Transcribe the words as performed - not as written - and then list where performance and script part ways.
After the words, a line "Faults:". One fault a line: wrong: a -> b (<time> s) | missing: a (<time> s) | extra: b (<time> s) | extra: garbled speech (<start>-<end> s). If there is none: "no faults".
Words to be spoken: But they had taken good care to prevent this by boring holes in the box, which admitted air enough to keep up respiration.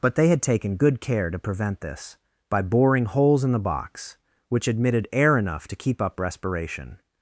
But they had taken good care to prevent this by boring holes in the box, which admitted air enough to keep up respiration.
Faults:
no faults